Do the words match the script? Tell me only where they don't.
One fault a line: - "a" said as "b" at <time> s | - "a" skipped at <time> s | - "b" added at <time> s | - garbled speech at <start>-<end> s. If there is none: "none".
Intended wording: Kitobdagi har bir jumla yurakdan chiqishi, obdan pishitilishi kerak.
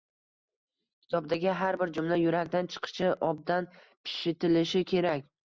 none